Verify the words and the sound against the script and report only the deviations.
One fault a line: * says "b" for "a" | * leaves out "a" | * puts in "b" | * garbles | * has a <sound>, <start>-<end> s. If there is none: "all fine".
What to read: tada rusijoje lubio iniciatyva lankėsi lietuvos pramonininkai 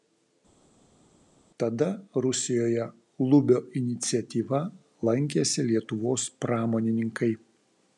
all fine